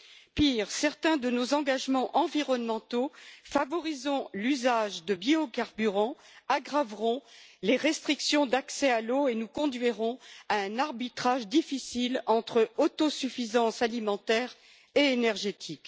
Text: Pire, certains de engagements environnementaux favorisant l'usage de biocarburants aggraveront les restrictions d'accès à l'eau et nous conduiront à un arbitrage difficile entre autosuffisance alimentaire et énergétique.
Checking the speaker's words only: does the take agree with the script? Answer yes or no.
no